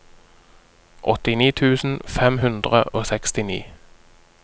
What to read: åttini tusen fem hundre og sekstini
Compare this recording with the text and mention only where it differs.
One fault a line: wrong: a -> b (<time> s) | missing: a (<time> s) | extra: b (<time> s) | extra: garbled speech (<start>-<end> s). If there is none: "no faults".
no faults